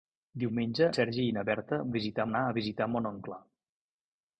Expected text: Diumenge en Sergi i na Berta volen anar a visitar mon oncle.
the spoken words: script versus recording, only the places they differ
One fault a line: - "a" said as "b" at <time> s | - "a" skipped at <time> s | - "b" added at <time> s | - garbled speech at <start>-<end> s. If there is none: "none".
- "en" skipped at 0.8 s
- "volen" said as "visitar" at 2.0 s